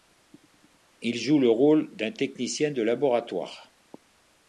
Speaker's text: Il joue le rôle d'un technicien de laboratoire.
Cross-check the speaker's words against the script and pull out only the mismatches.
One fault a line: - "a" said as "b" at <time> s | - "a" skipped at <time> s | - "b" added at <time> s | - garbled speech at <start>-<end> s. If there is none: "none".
none